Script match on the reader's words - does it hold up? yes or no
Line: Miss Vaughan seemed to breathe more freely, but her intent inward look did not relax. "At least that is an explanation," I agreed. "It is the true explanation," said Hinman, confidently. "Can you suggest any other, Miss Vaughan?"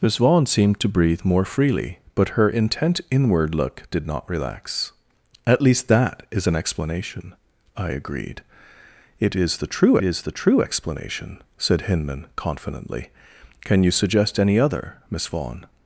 no